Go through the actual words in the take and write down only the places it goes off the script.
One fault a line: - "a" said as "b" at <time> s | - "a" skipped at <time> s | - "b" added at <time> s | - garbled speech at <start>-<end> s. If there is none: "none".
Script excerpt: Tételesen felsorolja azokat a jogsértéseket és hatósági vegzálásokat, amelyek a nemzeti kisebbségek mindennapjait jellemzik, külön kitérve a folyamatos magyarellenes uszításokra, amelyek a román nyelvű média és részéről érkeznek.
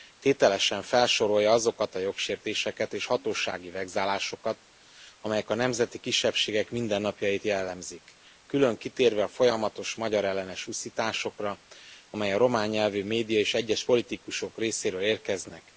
- "egyes politikusok" added at 13.5 s